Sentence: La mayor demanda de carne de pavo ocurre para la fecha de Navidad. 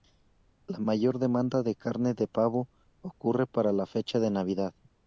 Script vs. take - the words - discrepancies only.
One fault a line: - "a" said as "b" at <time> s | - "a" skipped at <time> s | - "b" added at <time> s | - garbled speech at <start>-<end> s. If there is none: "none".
none